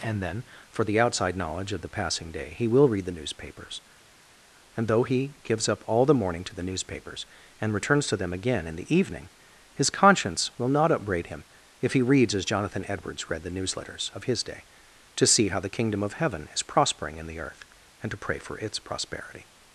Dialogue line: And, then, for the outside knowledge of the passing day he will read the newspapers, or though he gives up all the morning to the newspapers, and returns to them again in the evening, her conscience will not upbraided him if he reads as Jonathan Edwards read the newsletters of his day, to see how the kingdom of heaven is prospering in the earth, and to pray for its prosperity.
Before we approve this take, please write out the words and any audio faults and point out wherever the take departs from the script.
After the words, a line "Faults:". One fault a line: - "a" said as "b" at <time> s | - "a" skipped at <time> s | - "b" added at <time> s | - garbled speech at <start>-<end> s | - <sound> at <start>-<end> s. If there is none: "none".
And, then, for the outside knowledge of the passing day he will read the newspapers, and though he gives up all the morning to the newspapers, and returns to them again in the evening, his conscience will not upbraid him if he reads as Jonathan Edwards read the newsletters of his day, to see how the kingdom of heaven is prospering in the earth, and to pray for its prosperity.
Faults:
- "or" said as "and" at 4.7 s
- "her" said as "his" at 9.7 s
- "upbraided" said as "upbraid" at 10.9 s